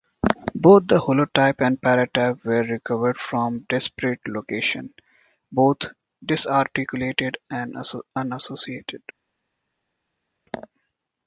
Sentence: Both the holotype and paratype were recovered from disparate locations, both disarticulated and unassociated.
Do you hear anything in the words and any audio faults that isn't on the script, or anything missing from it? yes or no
no